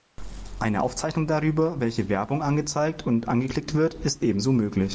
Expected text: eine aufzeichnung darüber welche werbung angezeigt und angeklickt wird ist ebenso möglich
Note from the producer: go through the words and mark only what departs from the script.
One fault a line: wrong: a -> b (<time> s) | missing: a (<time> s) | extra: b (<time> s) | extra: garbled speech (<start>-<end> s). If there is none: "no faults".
no faults